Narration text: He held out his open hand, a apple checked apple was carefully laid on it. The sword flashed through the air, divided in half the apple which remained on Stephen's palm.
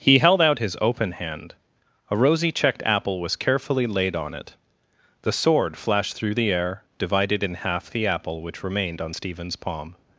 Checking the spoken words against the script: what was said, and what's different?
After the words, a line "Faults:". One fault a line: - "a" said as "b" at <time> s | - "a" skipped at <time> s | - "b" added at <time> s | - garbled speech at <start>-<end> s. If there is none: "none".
He held out his open hand, a rosy checked apple was carefully laid on it. The sword flashed through the air, divided in half the apple which remained on Stephen's palm.
Faults:
- "apple" said as "rosy" at 2.2 s